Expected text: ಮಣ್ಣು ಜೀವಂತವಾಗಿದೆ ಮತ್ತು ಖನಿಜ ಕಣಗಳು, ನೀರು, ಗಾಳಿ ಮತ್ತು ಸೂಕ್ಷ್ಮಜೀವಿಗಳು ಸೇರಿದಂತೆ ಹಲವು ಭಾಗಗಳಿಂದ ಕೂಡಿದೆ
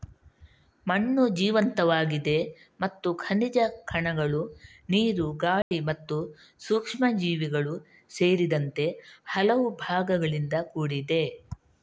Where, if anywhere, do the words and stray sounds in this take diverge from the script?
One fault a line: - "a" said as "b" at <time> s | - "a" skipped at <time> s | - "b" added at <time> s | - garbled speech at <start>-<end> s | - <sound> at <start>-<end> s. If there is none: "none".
- dropout at 5.6-5.7 s